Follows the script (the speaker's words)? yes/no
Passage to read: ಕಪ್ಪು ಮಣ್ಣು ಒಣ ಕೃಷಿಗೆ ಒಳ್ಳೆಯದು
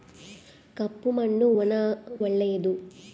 no